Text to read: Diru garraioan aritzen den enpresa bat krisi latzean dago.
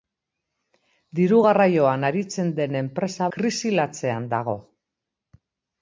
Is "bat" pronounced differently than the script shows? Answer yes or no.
yes